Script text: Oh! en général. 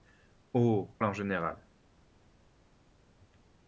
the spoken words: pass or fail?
pass